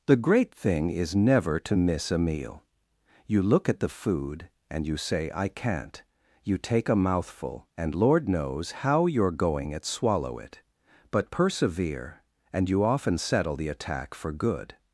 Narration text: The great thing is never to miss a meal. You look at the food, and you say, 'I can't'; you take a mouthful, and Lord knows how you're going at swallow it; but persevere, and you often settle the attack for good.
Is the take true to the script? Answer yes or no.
yes